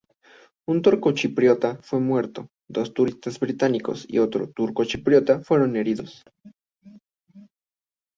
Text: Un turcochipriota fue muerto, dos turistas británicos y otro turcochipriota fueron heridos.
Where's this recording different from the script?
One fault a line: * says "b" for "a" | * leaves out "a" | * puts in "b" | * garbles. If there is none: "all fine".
all fine